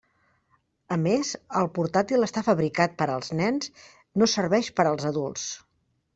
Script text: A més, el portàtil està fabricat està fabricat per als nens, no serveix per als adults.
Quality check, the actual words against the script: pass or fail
fail